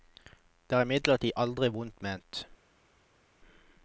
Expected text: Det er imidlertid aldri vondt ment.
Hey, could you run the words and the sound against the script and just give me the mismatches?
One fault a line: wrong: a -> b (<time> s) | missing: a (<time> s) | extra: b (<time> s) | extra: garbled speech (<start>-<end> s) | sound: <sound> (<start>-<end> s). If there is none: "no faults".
no faults